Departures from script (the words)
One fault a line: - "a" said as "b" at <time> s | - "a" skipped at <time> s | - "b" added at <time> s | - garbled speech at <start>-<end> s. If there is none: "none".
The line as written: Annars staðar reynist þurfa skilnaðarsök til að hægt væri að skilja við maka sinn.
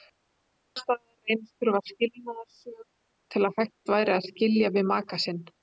none